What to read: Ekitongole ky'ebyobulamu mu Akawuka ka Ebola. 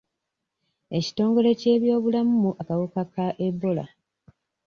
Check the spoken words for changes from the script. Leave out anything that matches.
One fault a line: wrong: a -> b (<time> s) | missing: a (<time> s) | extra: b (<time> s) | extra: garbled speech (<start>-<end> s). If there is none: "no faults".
no faults